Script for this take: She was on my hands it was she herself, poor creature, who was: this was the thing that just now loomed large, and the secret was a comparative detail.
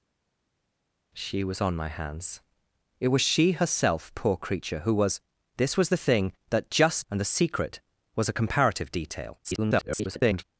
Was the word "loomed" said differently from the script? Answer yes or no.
yes